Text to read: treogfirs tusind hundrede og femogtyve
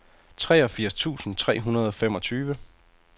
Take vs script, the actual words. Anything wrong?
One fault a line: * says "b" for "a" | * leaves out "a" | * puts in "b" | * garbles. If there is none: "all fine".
* puts in "tre"